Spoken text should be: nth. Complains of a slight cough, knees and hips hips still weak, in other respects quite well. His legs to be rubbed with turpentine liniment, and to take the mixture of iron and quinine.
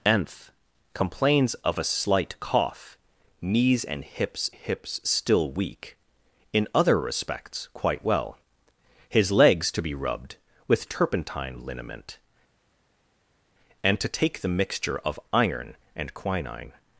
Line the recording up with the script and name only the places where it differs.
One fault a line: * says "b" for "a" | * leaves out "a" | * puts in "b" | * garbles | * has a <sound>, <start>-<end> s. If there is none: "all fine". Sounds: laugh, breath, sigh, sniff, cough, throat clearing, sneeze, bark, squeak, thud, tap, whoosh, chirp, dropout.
all fine